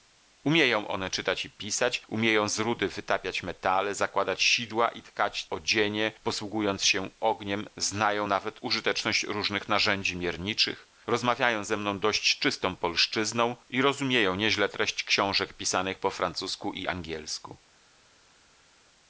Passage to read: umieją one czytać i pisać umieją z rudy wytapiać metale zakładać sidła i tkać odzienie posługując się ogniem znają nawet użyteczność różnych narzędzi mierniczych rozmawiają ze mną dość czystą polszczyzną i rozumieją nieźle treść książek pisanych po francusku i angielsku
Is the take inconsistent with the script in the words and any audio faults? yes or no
no